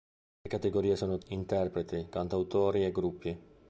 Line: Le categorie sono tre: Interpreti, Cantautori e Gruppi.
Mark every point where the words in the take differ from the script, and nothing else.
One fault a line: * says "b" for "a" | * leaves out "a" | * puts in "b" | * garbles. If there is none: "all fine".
* leaves out "tre"